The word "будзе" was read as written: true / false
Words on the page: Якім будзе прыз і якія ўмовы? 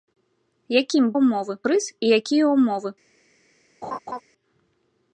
false